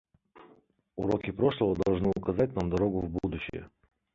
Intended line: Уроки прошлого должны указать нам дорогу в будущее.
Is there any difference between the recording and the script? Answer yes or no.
no